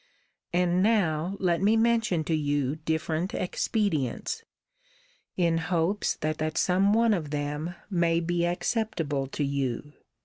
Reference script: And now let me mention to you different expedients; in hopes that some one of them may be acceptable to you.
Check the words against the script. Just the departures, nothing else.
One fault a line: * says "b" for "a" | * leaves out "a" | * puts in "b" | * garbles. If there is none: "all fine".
* puts in "that"